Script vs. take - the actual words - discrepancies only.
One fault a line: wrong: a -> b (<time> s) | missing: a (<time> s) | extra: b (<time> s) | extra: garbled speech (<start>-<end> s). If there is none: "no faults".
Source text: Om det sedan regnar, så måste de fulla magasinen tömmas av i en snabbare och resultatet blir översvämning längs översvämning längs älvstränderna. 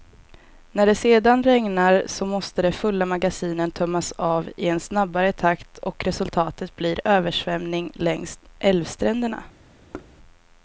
wrong: Om -> När (0.7 s)
extra: takt (5.3 s)
missing: översvämning längs (8.4 s)